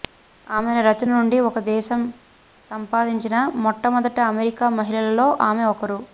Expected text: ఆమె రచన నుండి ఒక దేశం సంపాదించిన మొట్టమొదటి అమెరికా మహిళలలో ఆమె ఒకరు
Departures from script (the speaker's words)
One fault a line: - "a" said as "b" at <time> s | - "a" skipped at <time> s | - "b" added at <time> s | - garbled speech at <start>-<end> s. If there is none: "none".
none